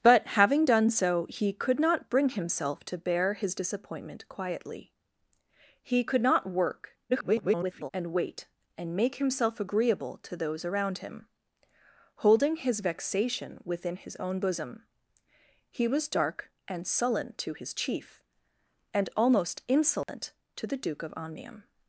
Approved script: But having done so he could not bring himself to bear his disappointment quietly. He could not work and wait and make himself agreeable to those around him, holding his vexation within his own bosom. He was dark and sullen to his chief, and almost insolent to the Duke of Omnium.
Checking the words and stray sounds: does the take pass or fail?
fail